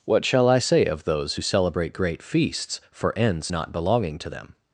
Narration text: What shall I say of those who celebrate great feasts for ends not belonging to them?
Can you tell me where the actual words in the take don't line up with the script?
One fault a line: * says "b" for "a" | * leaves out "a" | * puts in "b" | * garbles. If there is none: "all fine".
all fine